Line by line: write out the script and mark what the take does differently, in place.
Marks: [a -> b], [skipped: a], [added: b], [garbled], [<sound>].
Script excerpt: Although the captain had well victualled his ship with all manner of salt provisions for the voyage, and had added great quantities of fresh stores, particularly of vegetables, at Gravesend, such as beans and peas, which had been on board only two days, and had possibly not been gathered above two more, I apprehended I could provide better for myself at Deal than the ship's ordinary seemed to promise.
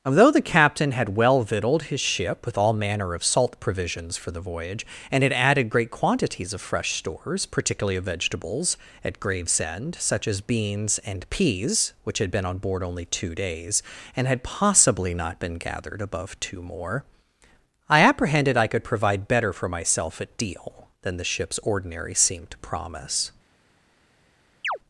Although the captain had well victualled his ship with all manner of salt provisions for the voyage, and had added great quantities of fresh stores, particularly of vegetables, at Gravesend, such as beans and peas, which had been on board only two days, and had possibly not been gathered above two more, I apprehended I could provide better for myself at Deal than the ship's ordinary seemed to promise. [chirp]